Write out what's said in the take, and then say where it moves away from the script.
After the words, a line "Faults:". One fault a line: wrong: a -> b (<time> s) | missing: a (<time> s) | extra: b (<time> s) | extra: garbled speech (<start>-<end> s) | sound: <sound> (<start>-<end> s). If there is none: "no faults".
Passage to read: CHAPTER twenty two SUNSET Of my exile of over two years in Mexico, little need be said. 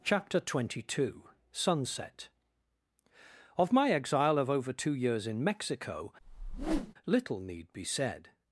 CHAPTER twenty two SUNSET Of my exile of over two years in Mexico, little need be said.
Faults:
sound: whoosh (6.2-6.9 s)